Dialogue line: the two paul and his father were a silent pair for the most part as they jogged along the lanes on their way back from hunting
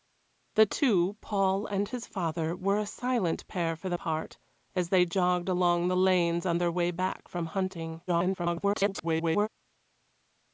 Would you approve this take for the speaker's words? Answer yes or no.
no